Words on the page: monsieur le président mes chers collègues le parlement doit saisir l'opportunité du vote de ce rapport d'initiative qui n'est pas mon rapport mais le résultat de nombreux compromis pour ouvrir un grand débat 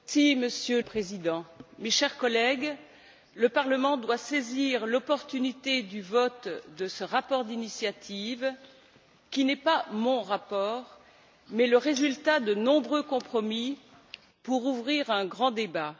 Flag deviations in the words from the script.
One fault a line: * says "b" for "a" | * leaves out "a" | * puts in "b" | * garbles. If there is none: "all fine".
* leaves out "le"